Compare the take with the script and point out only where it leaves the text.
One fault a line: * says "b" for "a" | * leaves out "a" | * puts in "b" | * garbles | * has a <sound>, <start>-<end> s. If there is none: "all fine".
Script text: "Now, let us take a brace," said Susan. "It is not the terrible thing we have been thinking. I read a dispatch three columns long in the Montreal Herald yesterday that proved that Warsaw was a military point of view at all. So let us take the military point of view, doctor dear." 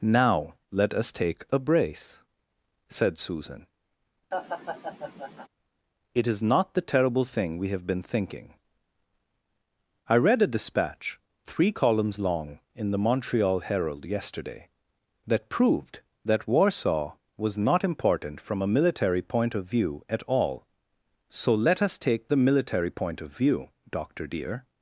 * has a laugh, 4.3-5.5 s
* puts in "not important from"